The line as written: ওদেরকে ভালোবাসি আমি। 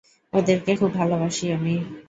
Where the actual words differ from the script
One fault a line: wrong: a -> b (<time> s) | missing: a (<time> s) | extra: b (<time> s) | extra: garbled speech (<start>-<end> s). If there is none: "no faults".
extra: খুব (0.7 s)